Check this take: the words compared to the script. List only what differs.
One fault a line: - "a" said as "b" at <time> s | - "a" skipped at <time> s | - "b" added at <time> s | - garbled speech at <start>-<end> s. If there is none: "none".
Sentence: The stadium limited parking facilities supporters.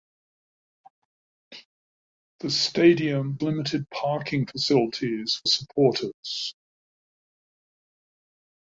none